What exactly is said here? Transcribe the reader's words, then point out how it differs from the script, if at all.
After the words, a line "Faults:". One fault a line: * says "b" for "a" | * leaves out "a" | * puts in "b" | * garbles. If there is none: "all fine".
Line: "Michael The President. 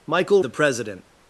"Michael The President.
Faults:
all fine